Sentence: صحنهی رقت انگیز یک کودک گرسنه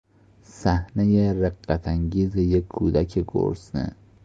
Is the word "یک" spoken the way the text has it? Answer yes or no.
yes